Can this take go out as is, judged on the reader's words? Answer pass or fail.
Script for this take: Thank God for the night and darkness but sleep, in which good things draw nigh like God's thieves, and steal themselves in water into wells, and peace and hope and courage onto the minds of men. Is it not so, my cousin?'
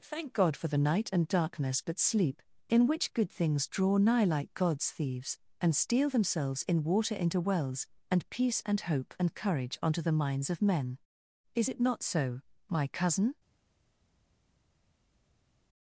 pass